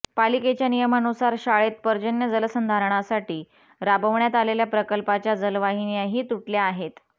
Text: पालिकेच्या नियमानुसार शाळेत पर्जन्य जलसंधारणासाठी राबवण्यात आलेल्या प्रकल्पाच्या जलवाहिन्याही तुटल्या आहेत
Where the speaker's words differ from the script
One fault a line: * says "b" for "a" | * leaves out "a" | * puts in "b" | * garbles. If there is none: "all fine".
all fine